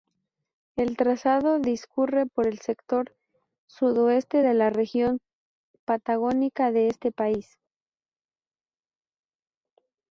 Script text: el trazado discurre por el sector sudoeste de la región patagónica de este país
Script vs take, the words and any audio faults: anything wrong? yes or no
no